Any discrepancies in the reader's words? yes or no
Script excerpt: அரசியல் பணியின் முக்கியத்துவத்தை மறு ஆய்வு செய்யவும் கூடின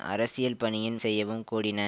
yes